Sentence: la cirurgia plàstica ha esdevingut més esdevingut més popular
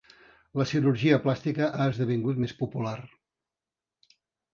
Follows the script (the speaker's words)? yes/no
no